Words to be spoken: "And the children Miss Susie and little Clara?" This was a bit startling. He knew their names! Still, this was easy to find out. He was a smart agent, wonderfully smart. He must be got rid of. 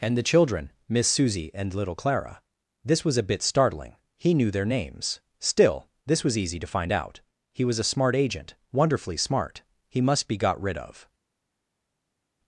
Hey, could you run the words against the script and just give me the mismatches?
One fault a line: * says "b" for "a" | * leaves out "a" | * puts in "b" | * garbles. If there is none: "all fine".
all fine